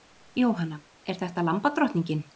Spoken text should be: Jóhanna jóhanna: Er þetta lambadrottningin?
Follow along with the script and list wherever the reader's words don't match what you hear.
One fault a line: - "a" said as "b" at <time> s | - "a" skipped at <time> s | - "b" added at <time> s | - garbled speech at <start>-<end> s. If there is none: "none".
- "jóhanna" skipped at 0.8 s